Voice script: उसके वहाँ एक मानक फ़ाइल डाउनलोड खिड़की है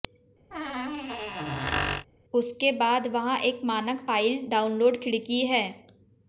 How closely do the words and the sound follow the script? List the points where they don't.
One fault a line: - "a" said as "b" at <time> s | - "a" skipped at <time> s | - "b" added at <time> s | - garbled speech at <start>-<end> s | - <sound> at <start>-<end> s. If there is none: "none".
- squeak at 0.5-2.1 s
- "बाद" added at 2.7 s